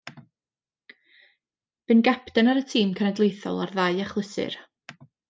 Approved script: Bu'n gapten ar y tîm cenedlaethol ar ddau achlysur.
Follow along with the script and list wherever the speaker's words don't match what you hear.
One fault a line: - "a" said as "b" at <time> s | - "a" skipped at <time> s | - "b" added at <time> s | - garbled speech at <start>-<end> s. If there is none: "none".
none